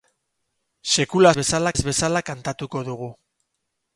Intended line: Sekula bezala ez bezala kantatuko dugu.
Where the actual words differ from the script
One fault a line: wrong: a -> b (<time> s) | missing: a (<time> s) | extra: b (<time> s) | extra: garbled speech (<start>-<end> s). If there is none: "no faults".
no faults